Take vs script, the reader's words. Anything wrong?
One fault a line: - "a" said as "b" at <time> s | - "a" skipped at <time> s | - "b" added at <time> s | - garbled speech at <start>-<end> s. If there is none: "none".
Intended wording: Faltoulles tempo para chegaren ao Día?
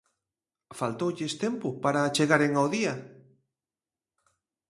none